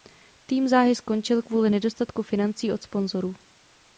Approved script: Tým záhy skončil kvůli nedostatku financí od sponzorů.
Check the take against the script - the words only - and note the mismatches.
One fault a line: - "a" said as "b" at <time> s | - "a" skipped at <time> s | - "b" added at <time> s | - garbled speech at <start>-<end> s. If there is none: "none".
none